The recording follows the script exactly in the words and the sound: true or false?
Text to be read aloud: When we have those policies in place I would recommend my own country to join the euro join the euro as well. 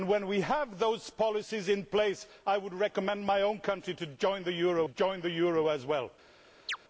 false